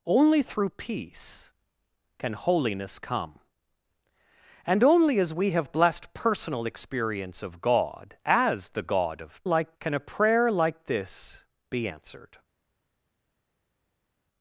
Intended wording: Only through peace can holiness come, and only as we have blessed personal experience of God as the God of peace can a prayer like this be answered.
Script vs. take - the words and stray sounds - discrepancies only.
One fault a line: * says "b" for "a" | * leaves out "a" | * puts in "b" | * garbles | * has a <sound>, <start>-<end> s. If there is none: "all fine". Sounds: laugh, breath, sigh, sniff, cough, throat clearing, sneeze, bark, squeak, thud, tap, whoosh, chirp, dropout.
* says "like" for "peace"